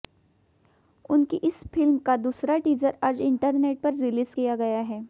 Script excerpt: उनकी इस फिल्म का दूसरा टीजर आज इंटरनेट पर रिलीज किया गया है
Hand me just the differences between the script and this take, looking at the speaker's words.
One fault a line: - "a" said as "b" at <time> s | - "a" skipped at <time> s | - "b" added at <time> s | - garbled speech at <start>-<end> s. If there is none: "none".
none